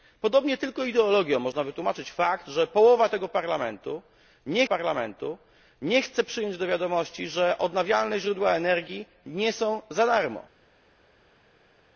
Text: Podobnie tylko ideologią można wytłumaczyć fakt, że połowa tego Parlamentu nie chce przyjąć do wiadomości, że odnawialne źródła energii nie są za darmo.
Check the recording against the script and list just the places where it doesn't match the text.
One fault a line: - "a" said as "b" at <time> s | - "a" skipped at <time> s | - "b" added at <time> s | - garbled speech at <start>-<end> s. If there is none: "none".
- "Parlamentu nie" added at 4.6 s